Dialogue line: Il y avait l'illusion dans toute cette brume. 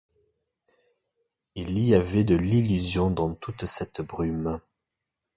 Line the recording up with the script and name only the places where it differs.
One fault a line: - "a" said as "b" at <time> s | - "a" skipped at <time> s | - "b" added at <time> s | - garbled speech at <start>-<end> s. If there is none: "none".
- "de" added at 2.2 s